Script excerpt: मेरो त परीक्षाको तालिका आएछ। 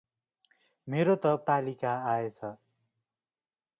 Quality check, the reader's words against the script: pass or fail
fail